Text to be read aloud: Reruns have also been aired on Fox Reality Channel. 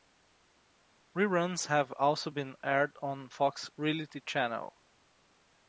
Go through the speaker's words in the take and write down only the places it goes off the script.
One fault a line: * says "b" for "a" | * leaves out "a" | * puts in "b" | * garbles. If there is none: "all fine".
all fine